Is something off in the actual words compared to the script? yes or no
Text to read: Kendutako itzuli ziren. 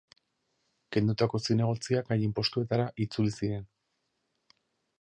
yes